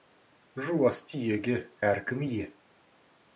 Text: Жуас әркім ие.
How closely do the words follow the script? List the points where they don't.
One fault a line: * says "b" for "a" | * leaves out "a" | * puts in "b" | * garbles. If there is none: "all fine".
* puts in "түйеге"